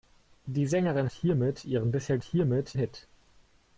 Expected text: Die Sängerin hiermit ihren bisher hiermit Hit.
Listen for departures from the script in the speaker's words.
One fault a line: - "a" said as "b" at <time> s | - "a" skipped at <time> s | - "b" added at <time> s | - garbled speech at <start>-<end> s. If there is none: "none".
none